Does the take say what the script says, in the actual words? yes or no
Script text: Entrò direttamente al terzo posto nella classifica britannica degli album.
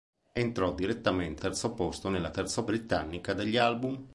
no